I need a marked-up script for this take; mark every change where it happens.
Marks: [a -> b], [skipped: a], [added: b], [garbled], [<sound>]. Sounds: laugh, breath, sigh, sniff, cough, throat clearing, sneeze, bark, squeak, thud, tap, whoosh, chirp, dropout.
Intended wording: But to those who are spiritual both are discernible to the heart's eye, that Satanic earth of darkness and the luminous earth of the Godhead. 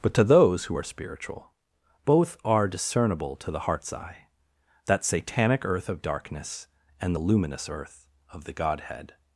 But to those who are spiritual both are discernible to the heart's eye, that Satanic earth of darkness and the luminous earth of the Godhead.